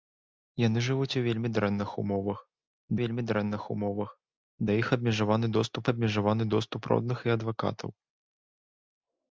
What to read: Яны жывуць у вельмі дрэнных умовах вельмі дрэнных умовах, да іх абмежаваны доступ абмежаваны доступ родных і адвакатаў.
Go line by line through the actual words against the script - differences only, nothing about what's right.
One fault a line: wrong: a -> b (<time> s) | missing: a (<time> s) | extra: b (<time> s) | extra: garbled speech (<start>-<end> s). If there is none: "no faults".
no faults